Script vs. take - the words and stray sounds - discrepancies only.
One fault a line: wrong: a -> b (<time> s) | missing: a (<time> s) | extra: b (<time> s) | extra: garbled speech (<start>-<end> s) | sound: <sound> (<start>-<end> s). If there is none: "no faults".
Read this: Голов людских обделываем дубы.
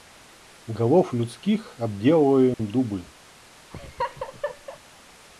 sound: dropout (2.5-2.6 s)
sound: laugh (3.7-4.8 s)